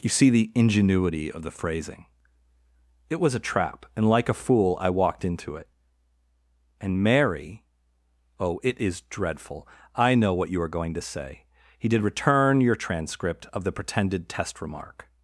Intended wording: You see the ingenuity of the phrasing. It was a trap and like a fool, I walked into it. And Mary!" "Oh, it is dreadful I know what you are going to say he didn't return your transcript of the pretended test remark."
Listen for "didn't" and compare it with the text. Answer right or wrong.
wrong